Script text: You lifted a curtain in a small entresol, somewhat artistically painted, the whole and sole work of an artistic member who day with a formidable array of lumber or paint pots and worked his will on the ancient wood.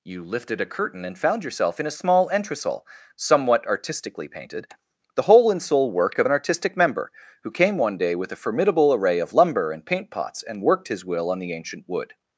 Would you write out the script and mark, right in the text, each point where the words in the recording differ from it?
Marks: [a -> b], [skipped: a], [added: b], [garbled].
You lifted a curtain [added: and found yourself] in a small entresol, somewhat artistically painted, the whole and sole work of an artistic member who [added: came one] day with a formidable array of lumber [or -> and] paint pots and worked his will on the ancient wood.